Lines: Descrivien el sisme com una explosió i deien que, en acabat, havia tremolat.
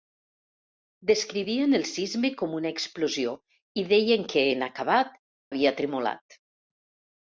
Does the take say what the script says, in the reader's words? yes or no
yes